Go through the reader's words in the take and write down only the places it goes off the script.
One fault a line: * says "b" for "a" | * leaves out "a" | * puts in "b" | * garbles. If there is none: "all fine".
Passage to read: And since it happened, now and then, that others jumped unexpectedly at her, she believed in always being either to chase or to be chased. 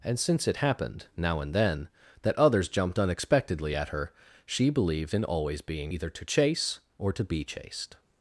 all fine